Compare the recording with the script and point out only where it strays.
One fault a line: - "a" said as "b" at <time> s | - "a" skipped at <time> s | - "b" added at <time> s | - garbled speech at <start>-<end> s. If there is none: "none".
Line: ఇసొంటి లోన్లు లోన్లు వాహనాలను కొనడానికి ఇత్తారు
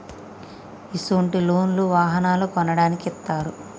- "లోన్లు" skipped at 1.8 s